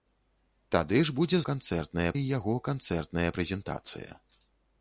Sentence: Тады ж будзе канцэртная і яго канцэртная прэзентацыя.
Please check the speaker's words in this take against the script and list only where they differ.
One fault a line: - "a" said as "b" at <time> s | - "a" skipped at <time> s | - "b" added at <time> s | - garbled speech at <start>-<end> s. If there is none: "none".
none